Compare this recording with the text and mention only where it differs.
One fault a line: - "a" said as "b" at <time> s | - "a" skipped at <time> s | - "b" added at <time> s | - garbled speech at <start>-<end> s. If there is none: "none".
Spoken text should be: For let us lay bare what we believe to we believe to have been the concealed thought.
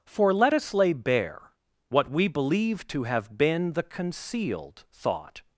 - "we believe to" skipped at 3.0 s